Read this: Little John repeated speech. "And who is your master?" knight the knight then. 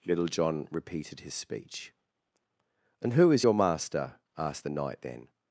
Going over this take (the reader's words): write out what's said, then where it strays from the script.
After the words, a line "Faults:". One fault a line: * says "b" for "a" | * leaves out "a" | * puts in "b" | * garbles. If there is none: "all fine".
Little John repeated his speech. "And who is your master?" asked the knight then.
Faults:
* puts in "his"
* says "asked" for "knight"